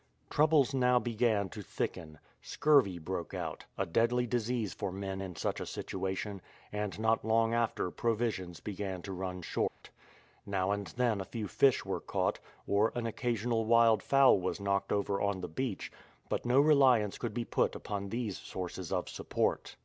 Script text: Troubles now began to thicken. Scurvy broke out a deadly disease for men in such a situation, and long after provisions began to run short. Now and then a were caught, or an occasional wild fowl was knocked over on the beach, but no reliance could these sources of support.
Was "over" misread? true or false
false